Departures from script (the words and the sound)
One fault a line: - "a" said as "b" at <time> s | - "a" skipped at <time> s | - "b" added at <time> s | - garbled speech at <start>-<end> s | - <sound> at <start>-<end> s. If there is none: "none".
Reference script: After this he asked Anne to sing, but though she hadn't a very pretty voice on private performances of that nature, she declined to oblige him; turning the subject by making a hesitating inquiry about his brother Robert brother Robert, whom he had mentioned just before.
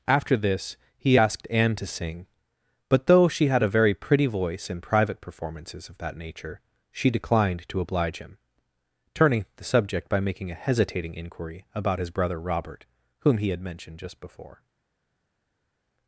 - "hadn't" said as "had" at 3.5 s
- "on" said as "in" at 4.7 s
- "brother Robert" skipped at 12.8 s